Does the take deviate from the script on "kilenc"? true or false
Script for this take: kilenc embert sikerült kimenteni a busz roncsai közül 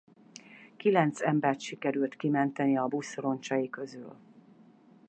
false